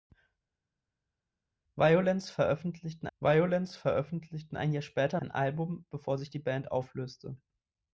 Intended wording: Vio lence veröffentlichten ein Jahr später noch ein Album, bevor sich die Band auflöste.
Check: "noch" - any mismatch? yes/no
yes